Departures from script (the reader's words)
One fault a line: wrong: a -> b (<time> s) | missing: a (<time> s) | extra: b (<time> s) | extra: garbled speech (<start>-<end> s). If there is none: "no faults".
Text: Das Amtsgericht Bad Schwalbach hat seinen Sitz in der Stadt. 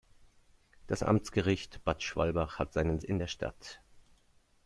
missing: Sitz (3.0 s)